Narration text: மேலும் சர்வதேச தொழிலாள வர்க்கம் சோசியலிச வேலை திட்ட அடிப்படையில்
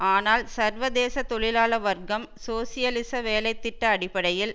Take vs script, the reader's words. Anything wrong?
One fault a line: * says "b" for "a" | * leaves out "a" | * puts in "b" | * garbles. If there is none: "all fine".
* says "ஆனால்" for "மேலும்"